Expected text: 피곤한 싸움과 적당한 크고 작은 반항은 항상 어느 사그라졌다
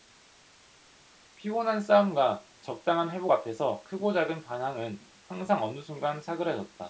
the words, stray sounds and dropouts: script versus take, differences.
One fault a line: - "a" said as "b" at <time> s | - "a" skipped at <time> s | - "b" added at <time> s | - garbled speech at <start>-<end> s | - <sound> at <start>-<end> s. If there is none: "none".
- "회복 앞에서" added at 3.1 s
- "순간" added at 5.8 s